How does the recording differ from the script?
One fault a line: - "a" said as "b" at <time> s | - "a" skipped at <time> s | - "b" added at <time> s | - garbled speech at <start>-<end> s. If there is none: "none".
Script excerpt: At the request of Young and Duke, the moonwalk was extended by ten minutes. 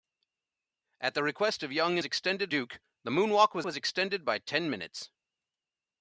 - "and" said as "extended" at 2.0 s
- "was" added at 3.6 s